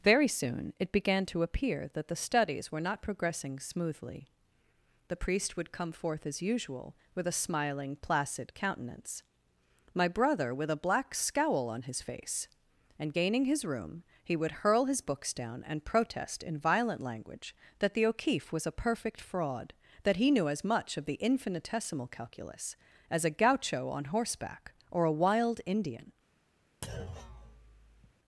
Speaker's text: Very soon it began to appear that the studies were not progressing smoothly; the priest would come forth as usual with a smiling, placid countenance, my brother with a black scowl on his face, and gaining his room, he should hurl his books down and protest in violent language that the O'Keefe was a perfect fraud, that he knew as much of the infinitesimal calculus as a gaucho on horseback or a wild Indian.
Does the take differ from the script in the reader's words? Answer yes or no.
yes